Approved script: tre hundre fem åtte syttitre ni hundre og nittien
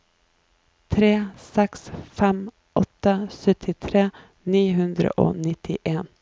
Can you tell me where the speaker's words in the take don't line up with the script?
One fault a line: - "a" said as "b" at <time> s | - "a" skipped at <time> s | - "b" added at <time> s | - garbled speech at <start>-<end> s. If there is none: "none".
- "hundre" said as "seks" at 1.4 s